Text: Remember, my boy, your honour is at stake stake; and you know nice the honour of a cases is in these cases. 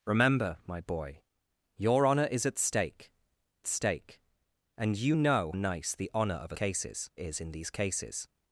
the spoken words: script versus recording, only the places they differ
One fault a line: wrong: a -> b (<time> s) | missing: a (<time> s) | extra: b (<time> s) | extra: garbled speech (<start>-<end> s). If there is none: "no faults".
no faults